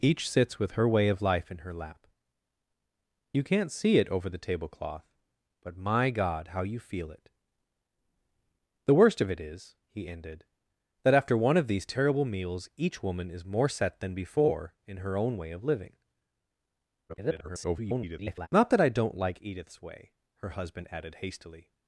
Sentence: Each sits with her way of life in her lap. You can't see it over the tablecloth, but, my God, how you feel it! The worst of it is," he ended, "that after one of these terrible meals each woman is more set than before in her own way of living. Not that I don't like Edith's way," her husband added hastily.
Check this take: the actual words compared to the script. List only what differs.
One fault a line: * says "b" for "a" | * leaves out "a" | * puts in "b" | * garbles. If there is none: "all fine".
* garbles